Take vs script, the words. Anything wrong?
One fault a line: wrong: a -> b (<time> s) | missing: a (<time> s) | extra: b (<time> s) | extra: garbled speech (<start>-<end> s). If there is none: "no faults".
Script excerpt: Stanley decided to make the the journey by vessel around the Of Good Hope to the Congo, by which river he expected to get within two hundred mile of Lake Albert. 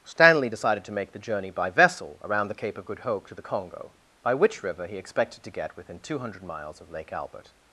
missing: the (1.3 s)
extra: Cape (2.6 s)
wrong: mile -> miles (6.4 s)